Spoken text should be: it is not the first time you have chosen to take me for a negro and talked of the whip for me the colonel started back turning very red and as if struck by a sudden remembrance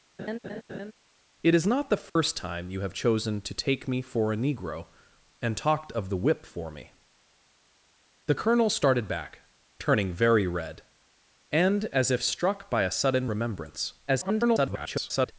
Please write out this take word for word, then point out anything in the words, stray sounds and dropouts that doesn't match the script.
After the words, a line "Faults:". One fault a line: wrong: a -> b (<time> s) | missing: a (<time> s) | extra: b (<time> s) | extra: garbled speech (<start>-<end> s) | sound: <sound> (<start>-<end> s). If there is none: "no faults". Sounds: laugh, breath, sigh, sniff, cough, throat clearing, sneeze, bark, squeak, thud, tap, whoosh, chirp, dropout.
it is not the first time you have chosen to take me for a negro and talked of the whip for me the colonel started back turning very red and as if struck by a sudden remembrance [garbled]
Faults:
sound: laugh (0.2-0.9 s)
sound: dropout (2.1-2.2 s)
extra: garbled speech (14.1-15.3 s)